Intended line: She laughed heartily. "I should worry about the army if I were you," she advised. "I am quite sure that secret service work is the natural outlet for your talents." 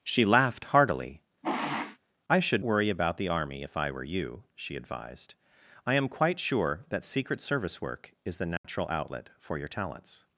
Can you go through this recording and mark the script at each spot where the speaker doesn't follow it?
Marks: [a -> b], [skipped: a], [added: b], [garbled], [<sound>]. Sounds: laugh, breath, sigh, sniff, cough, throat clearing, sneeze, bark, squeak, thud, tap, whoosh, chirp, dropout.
She laughed heartily. [sniff] "I should worry about the army if I were you," she advised. "I am quite sure that secret service work is the natural [dropout] outlet for your talents."